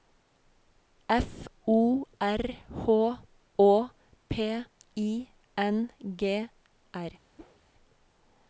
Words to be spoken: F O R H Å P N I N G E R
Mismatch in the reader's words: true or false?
true